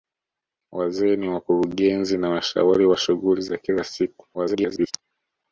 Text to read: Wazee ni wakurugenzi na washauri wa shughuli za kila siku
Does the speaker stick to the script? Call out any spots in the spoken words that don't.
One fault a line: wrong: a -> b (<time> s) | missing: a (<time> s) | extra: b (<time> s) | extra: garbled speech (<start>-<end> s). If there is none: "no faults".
extra: garbled speech (4.3-4.9 s)